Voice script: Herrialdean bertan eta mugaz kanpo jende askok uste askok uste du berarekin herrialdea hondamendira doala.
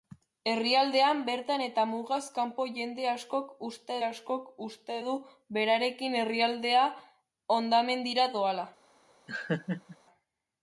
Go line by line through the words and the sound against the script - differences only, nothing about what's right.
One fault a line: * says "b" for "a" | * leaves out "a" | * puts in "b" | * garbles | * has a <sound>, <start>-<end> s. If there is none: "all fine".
* has a laugh, 9.3-10.0 s